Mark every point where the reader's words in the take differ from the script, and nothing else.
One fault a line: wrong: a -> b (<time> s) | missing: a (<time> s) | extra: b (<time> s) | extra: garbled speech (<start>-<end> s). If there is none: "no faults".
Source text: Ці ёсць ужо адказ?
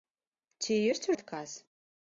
missing: ужо (1.1 s)